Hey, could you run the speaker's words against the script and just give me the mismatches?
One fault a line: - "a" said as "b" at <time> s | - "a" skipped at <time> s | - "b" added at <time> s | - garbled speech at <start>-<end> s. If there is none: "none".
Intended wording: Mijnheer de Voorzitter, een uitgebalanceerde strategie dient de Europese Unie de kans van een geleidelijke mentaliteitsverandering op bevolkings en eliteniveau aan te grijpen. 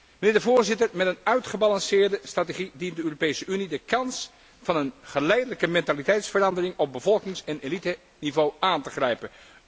- "met" added at 0.9 s